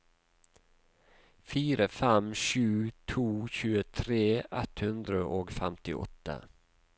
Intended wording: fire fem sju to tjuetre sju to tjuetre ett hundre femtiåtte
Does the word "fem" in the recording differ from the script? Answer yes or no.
no